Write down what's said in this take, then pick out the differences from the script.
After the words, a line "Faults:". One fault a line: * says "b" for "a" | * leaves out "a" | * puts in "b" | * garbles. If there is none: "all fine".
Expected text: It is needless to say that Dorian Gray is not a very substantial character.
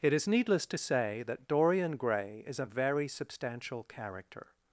It is needless to say that Dorian Gray is a very substantial character.
Faults:
* leaves out "not"